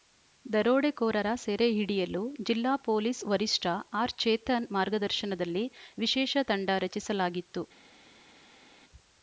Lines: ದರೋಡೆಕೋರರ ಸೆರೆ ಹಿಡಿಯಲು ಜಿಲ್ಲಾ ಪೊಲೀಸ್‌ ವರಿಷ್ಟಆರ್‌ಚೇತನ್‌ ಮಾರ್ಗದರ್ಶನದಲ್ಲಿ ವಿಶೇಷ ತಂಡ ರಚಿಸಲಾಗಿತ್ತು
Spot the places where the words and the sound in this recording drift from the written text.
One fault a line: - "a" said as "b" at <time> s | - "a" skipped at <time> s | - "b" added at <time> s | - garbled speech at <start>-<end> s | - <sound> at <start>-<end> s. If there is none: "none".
none